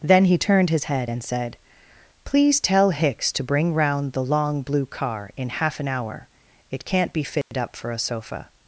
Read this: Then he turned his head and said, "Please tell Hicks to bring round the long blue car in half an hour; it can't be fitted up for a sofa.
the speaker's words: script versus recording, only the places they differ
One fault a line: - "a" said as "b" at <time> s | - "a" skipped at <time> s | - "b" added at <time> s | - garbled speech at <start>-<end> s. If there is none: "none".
none